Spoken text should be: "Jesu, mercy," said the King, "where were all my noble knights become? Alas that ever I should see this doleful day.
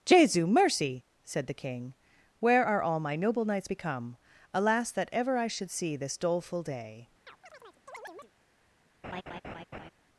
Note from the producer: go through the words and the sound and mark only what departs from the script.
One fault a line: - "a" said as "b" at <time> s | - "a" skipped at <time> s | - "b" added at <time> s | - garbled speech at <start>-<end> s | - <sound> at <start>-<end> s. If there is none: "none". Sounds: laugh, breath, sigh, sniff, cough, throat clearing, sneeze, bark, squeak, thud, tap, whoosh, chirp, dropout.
- "were" said as "are" at 2.6 s
- chirp at 7.3-8.3 s
- laugh at 9.0-9.9 s